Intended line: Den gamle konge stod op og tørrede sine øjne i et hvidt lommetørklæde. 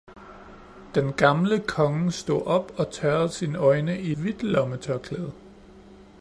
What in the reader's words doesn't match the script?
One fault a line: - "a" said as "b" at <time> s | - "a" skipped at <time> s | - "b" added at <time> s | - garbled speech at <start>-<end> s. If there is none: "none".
- "et" skipped at 4.1 s